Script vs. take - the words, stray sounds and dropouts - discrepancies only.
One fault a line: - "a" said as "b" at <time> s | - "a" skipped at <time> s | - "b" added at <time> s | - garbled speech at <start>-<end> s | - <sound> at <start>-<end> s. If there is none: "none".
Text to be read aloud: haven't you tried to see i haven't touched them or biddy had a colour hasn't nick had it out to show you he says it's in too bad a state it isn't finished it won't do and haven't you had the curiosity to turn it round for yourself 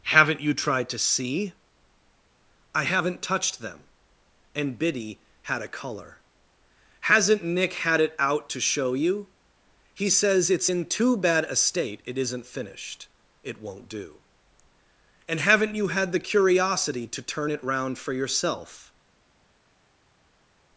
- "or" said as "and" at 4.5 s